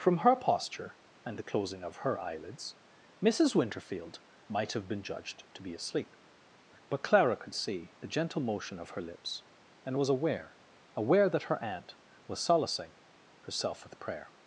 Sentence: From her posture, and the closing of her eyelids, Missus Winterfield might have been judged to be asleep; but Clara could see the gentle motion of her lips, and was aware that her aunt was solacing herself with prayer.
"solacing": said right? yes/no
yes